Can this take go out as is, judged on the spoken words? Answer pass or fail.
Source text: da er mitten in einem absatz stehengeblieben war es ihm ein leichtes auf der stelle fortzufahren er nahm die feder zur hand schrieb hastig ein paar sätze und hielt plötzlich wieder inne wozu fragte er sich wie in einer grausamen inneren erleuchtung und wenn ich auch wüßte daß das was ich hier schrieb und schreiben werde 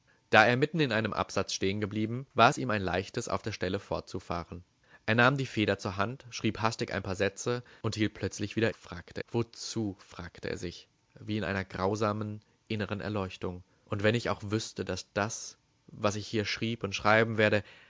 fail